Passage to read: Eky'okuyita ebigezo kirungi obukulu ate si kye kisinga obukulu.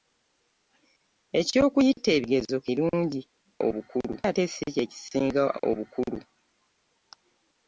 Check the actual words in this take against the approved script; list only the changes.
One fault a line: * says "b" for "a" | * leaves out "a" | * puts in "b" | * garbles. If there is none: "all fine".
all fine